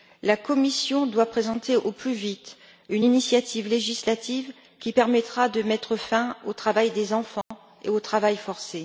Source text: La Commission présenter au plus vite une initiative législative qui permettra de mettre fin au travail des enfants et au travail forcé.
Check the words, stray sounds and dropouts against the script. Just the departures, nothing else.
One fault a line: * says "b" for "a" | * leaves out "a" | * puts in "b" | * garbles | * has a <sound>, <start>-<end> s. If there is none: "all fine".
* puts in "doit"
* has a dropout, 7.4-7.5 s